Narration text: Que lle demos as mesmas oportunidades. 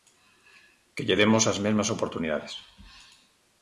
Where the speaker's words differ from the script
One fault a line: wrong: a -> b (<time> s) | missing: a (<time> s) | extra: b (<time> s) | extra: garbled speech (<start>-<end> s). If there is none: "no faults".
no faults